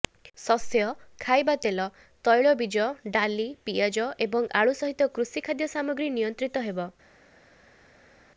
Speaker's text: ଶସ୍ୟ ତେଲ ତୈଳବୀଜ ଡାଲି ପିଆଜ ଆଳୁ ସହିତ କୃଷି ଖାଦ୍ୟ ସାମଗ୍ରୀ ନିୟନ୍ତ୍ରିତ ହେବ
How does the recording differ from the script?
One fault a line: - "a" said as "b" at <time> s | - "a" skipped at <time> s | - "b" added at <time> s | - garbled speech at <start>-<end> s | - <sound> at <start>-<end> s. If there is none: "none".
- "ଖାଇବା" added at 1.2 s
- "ଏବଂ" added at 4.3 s